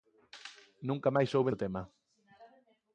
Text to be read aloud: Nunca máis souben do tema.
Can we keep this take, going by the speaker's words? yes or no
yes